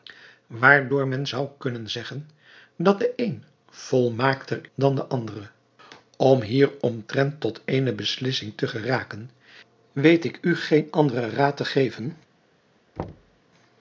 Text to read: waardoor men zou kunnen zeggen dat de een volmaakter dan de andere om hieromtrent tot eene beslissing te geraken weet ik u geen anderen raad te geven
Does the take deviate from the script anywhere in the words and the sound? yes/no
yes